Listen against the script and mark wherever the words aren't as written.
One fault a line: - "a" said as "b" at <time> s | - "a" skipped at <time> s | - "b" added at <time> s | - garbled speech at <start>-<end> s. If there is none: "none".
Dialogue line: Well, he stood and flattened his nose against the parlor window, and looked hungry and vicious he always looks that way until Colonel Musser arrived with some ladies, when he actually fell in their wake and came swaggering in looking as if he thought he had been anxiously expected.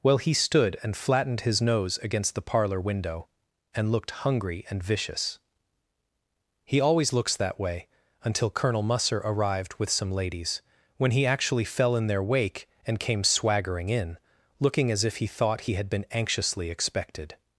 none